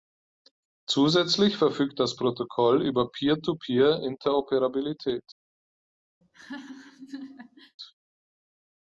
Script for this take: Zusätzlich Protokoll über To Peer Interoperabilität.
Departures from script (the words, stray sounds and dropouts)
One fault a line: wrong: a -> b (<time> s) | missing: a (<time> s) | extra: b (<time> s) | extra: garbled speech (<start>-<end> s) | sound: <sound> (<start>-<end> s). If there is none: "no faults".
extra: verfügt das (1.6 s)
extra: Peer (3.1 s)
sound: laugh (6.2-7.8 s)